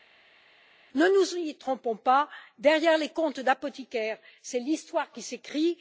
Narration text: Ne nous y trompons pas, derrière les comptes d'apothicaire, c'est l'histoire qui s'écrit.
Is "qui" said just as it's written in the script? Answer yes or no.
yes